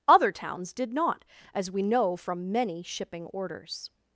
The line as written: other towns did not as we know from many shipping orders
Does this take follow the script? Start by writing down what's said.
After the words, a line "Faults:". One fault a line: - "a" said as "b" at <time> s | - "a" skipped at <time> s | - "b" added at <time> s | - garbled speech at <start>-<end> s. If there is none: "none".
other towns did not as we know from many shipping orders
Faults:
none